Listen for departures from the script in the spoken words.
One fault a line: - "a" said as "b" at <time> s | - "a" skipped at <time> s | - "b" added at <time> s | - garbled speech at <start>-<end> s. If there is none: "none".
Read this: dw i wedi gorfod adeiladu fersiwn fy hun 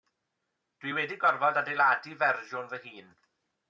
none